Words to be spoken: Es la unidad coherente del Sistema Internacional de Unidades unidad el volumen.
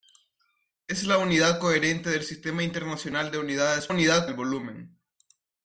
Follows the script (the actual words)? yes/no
yes